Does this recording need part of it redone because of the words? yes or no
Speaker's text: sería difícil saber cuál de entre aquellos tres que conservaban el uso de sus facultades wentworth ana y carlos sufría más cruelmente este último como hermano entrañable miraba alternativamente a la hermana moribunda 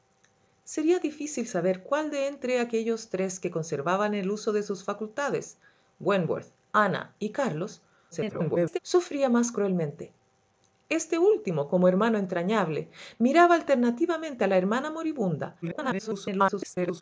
yes